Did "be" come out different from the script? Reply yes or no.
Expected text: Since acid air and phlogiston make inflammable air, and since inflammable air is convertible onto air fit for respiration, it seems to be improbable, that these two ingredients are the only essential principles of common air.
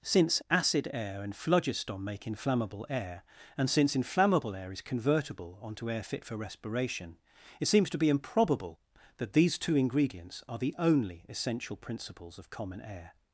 no